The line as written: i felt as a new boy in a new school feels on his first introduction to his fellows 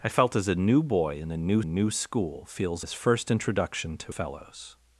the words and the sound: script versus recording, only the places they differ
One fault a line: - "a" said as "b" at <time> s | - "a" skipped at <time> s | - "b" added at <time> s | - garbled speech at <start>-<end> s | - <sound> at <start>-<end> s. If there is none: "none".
- "new" added at 1.6 s
- "on" skipped at 2.8 s
- "his" skipped at 4.1 s